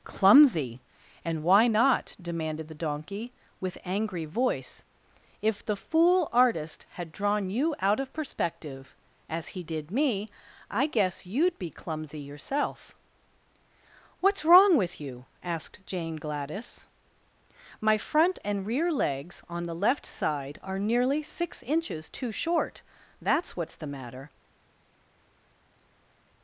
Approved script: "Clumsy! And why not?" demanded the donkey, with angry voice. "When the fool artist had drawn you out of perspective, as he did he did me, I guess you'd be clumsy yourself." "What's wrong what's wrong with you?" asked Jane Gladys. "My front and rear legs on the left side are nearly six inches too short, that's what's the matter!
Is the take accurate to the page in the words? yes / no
no